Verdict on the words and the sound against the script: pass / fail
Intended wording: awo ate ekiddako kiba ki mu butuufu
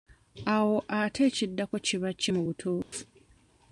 fail